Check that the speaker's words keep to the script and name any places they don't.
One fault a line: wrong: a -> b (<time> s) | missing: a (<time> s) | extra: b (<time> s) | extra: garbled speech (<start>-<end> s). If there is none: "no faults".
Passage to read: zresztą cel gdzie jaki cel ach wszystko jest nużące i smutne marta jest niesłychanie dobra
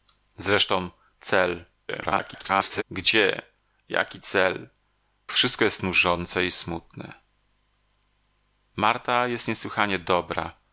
extra: garbled speech (1.9-2.8 s)
missing: ach (4.7 s)